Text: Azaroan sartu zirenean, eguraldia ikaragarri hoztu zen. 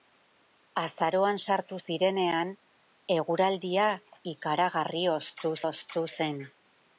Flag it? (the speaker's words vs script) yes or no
yes